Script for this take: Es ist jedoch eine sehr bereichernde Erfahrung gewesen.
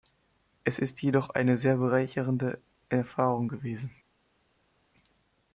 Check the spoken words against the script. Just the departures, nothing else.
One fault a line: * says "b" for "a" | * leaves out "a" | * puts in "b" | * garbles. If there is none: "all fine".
all fine